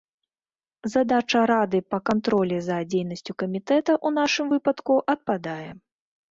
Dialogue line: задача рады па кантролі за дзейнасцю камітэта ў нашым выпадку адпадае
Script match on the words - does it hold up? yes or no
yes